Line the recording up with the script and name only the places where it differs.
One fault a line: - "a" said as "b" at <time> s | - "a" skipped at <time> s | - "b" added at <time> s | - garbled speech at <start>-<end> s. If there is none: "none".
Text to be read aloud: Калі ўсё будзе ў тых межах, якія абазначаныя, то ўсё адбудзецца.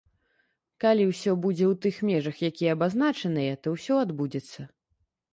none